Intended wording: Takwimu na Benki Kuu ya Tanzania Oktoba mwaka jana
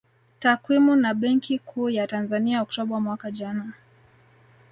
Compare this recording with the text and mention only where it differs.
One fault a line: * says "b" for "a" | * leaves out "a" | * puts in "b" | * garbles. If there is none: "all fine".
all fine